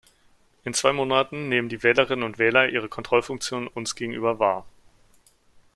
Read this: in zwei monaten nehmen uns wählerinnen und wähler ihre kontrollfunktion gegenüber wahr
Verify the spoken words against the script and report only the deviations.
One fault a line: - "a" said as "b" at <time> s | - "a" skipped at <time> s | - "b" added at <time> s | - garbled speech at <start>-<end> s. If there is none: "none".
- "uns" said as "die" at 1.7 s
- "uns" added at 3.7 s